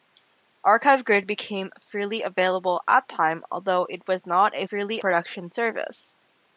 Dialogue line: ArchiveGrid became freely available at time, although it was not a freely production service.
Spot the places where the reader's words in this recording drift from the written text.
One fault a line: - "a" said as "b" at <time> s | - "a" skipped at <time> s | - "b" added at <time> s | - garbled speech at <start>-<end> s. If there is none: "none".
none